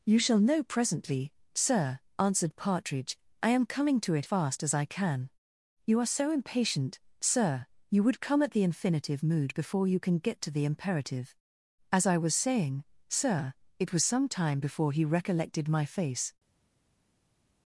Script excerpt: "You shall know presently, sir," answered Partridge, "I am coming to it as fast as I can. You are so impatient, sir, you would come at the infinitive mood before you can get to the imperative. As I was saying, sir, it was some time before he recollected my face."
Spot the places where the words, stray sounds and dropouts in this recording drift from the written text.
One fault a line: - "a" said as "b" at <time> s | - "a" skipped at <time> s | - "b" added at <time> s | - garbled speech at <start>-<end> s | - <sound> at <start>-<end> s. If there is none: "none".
- "as" skipped at 4.3 s